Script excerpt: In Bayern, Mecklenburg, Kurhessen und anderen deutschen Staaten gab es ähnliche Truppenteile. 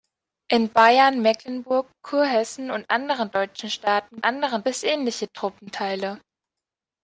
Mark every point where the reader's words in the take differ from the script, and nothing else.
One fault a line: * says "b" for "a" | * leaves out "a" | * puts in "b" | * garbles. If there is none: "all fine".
* says "anderen" for "gab"